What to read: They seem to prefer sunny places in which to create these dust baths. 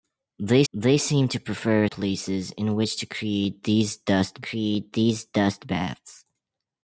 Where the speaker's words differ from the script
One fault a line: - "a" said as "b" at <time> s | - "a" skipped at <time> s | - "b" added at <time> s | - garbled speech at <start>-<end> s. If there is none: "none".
- "they" added at 0.7 s
- "sunny" skipped at 1.9 s
- "create these dust" added at 4.4 s